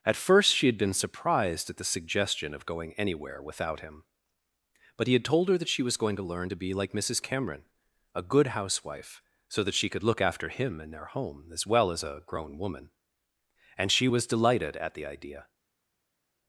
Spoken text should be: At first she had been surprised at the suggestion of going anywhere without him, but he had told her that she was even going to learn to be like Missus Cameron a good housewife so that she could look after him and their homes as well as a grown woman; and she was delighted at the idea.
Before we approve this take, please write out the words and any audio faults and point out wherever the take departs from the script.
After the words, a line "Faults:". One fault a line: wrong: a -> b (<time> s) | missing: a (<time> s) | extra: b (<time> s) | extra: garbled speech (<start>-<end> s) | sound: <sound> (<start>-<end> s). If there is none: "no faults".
At first she had been surprised at the suggestion of going anywhere without him, but he had told her that she was going to learn to be like Missus Cameron a good housewife so that she could look after him and their home as well as a grown woman; and she was delighted at the idea.
Faults:
missing: even (6.0 s)
wrong: homes -> home (11.0 s)